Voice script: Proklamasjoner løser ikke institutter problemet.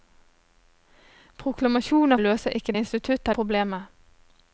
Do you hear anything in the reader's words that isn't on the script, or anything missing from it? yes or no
no